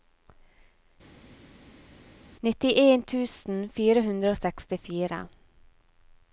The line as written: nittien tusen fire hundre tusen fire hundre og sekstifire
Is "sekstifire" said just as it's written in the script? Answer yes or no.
yes